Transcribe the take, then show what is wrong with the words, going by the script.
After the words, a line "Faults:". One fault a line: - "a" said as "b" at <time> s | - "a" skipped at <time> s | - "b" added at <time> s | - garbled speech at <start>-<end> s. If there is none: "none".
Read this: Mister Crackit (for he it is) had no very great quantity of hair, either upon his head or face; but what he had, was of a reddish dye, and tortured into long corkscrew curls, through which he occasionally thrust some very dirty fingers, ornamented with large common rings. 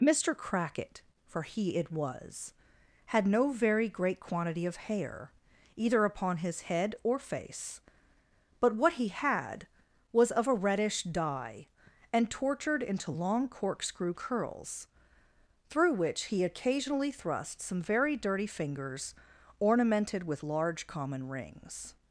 Mister Crackit (for he it was) had no very great quantity of hair, either upon his head or face; but what he had, was of a reddish dye, and tortured into long corkscrew curls, through which he occasionally thrust some very dirty fingers, ornamented with large common rings.
Faults:
- "is" said as "was" at 1.9 s